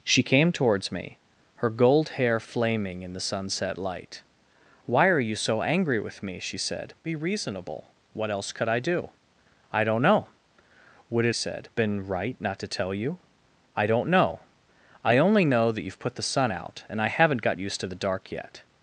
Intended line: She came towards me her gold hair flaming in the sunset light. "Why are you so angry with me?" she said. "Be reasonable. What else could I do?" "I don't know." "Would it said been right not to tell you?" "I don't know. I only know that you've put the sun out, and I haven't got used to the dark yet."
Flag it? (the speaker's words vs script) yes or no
no